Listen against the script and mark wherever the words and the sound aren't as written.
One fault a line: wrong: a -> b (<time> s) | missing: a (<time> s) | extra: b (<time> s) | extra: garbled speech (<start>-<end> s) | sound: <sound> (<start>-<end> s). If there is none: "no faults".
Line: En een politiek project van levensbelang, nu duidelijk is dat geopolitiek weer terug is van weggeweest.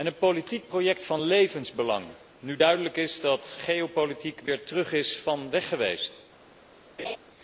sound: laugh (7.0-7.2 s)